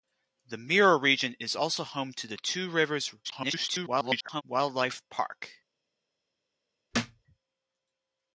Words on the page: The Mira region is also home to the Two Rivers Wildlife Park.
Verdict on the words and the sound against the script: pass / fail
fail